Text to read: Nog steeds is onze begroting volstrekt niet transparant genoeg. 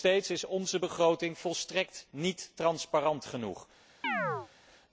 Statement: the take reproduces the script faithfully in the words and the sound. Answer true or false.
false